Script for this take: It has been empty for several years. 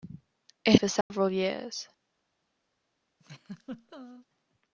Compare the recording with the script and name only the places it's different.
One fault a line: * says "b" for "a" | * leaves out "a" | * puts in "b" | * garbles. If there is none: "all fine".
* leaves out "has been empty"